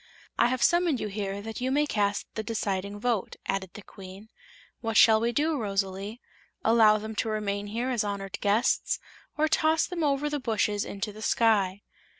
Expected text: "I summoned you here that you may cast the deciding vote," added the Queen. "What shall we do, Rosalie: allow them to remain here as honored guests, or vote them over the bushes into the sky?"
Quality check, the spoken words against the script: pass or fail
fail